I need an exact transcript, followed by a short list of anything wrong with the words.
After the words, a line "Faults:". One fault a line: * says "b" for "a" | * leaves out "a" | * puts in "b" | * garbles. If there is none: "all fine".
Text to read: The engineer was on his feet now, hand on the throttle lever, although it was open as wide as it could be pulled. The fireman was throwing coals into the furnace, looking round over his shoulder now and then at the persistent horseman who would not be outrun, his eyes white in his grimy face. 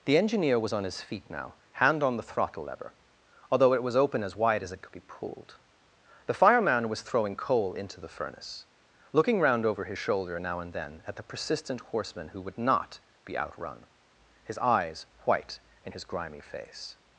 The engineer was on his feet now, hand on the throttle lever, although it was open as wide as it could be pulled. The fireman was throwing coal into the furnace, looking round over his shoulder now and then at the persistent horseman who would not be outrun, his eyes white in his grimy face.
Faults:
* says "coal" for "coals"